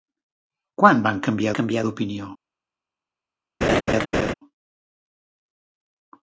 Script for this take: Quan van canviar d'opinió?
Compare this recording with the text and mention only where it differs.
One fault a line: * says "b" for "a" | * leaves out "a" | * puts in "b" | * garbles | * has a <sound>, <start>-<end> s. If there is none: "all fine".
* puts in "canviar"
* has a laugh, 3.6-4.3 s